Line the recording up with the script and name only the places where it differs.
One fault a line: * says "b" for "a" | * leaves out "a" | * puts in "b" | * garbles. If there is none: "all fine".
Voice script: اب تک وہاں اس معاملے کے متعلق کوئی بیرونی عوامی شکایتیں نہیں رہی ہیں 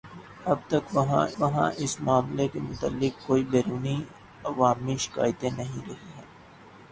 * puts in "وہاں"